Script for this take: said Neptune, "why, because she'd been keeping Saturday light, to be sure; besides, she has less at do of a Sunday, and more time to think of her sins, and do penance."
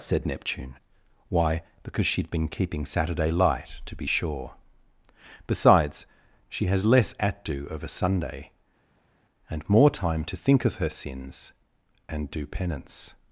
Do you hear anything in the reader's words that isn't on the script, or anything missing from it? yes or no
no